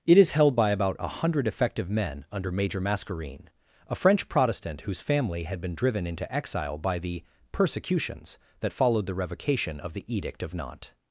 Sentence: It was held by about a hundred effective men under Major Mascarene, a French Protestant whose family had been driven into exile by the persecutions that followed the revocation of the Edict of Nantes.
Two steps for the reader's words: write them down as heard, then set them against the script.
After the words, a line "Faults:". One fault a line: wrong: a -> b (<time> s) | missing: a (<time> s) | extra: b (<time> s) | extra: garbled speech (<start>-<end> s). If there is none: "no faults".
It is held by about a hundred effective men under Major Mascarene, a French Protestant whose family had been driven into exile by the persecutions that followed the revocation of the Edict of Nantes.
Faults:
wrong: was -> is (0.2 s)